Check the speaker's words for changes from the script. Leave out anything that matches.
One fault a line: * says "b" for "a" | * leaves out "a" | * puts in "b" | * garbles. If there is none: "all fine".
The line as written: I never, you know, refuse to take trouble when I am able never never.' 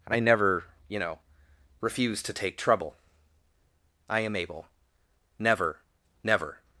* leaves out "when"